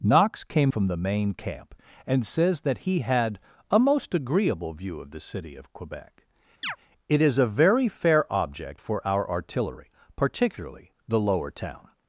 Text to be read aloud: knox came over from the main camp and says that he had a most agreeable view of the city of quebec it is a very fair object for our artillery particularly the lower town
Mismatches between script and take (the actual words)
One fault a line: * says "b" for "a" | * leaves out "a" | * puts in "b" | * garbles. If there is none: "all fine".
* leaves out "over"